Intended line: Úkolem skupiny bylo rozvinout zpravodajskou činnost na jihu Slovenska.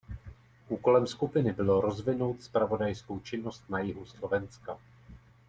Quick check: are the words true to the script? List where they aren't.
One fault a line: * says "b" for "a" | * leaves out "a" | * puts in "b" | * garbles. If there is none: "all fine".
all fine